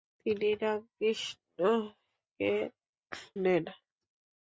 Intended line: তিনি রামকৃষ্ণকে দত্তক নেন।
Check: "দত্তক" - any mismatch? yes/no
yes